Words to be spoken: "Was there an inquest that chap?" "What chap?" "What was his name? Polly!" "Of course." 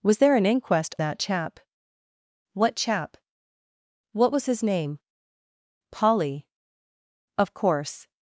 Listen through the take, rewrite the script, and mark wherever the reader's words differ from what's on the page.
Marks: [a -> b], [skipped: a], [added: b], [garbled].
"Was there an inquest that chap?" "What chap?" "What was his name? Polly!" "Of course."